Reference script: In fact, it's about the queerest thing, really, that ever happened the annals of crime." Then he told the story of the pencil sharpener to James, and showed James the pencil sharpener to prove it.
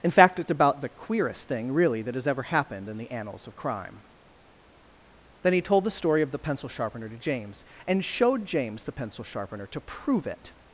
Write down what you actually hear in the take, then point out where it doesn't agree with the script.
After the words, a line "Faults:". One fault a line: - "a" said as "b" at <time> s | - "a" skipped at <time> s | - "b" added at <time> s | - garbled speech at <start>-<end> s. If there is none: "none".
In fact, it's about the queerest thing, really, that has ever happened in the annals of crime." Then he told the story of the pencil sharpener to James, and showed James the pencil sharpener to prove it.
Faults:
- "has" added at 2.2 s
- "in" added at 2.9 s